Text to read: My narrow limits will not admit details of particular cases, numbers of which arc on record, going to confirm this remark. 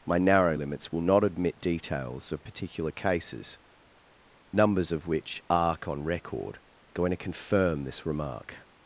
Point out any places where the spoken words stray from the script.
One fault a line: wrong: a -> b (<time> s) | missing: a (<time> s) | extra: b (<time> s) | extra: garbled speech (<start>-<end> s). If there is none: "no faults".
no faults